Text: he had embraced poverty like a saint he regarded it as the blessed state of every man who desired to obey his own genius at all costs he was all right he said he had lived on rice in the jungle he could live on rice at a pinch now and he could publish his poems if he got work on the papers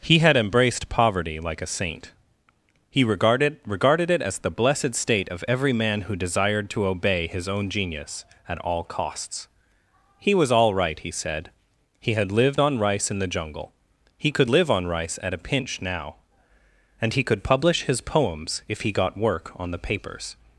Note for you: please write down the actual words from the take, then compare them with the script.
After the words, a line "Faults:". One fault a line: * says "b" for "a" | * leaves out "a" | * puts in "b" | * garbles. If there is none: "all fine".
he had embraced poverty like a saint he regarded regarded it as the blessed state of every man who desired to obey his own genius at all costs he was all right he said he had lived on rice in the jungle he could live on rice at a pinch now and he could publish his poems if he got work on the papers
Faults:
* puts in "regarded"